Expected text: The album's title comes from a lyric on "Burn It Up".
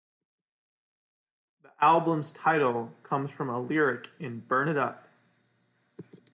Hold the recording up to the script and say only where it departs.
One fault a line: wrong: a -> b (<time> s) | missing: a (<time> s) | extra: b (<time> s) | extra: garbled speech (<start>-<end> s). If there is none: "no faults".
wrong: on -> in (4.2 s)